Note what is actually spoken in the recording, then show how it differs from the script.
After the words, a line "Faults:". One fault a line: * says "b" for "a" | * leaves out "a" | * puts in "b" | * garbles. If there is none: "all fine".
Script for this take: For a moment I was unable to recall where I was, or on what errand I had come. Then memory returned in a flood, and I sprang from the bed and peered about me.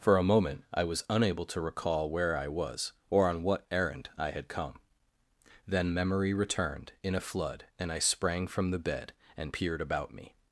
For a moment I was unable to recall where I was, or on what errand I had come. Then memory returned in a flood, and I sprang from the bed and peered about me.
Faults:
all fine